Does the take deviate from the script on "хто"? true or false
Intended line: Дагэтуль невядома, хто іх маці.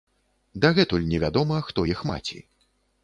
false